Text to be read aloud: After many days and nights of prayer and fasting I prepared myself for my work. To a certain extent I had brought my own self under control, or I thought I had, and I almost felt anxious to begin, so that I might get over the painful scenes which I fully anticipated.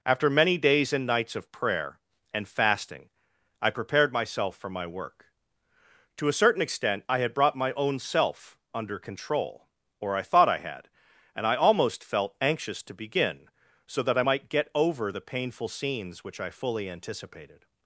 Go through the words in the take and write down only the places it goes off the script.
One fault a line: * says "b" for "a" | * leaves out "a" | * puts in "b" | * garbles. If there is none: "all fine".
all fine